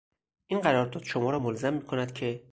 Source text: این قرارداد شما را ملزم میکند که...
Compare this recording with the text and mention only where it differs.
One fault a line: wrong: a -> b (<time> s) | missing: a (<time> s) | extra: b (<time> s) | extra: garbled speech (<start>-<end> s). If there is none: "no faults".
no faults